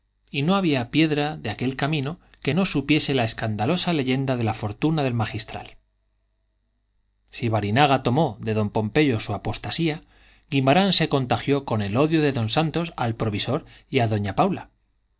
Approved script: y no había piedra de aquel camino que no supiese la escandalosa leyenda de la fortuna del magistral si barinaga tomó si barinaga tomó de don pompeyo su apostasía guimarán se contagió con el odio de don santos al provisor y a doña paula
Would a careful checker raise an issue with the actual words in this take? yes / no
yes